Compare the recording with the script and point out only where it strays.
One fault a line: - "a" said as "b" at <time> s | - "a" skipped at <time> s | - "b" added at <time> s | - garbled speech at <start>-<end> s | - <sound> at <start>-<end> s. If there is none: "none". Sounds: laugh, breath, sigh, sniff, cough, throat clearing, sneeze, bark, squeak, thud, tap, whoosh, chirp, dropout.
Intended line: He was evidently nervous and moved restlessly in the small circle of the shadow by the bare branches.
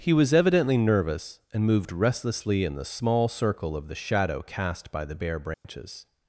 - "cast" added at 4.4 s
- dropout at 5.5-5.6 s